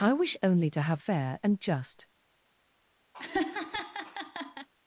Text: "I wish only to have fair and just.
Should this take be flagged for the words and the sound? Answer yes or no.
yes